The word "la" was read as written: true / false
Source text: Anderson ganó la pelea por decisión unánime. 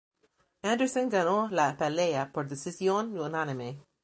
true